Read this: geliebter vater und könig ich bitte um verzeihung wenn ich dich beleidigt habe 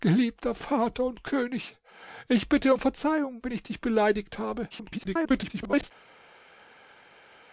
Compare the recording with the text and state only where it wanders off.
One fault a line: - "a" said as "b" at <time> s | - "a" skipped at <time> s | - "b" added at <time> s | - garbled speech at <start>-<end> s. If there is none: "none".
- garbled speech at 4.7-5.9 s